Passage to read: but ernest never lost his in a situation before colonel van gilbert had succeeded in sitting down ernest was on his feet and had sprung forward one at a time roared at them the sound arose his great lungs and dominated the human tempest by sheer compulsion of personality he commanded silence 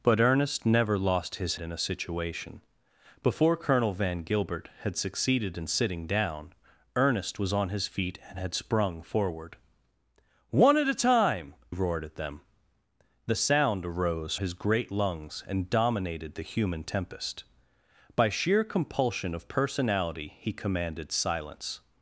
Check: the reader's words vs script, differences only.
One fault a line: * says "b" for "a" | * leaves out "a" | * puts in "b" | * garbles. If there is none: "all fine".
all fine